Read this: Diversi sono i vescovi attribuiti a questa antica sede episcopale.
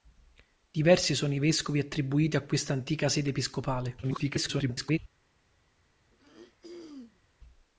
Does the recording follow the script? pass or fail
fail